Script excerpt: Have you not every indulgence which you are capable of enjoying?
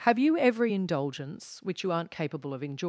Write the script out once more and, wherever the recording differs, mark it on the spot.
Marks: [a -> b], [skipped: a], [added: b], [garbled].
Have you [skipped: not] every indulgence which you [are -> aren't] capable of enjoying?